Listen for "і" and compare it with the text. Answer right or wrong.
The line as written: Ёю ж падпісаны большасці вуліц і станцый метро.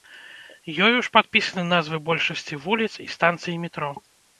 right